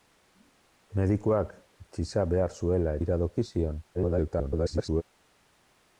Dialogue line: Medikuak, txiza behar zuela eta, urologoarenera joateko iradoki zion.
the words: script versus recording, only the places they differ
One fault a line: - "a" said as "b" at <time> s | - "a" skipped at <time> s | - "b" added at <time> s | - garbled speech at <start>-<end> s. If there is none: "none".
- "eta urologoarenera joateko" skipped at 3.0 s
- garbled speech at 3.9-5.0 s